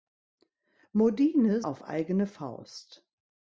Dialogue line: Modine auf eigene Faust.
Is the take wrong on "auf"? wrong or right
right